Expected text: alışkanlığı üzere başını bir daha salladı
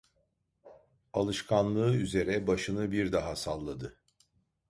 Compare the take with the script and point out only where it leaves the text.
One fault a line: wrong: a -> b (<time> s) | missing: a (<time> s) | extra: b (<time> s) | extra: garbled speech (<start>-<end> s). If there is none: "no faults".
no faults